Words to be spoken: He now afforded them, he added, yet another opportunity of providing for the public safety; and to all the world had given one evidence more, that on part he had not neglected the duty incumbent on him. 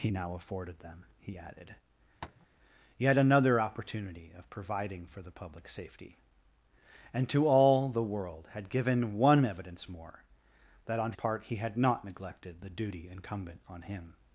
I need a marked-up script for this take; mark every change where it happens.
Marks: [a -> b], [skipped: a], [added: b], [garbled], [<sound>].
He now afforded them, he added, [tap] yet another opportunity of providing for the public safety; and to all the world had given one evidence more, that on part he had not neglected the duty incumbent on him.